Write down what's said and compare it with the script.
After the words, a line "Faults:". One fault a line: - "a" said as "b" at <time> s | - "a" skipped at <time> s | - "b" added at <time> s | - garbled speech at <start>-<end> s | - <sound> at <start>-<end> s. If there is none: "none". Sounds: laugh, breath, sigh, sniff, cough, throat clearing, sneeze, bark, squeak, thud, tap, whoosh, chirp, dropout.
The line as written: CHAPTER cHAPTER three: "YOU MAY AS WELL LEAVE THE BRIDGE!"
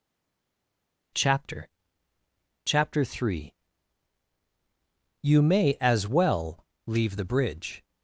CHAPTER cHAPTER three: "YOU MAY AS WELL LEAVE THE BRIDGE!"
Faults:
none